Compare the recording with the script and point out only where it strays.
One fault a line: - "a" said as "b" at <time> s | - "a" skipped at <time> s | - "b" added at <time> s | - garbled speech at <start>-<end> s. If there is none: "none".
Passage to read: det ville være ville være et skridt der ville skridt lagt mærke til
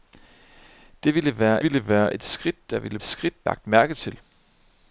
none